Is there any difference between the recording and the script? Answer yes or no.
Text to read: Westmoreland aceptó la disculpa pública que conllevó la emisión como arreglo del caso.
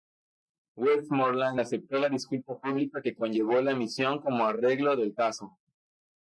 no